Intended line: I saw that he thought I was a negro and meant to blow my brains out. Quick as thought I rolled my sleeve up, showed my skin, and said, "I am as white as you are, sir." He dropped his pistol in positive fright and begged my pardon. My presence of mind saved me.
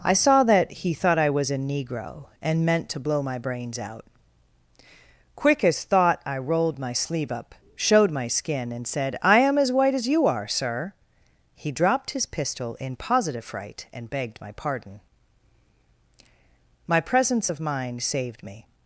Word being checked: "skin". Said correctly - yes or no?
yes